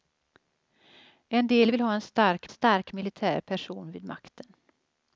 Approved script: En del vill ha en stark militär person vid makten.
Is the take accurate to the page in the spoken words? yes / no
no